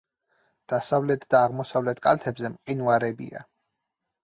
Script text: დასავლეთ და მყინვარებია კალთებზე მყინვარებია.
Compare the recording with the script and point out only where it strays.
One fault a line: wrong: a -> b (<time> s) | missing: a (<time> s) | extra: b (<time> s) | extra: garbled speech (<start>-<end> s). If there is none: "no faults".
wrong: მყინვარებია -> აღმოსავლეთ (1.5 s)